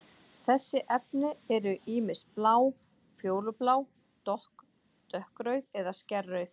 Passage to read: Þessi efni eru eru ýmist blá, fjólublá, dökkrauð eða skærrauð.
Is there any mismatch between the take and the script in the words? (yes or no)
yes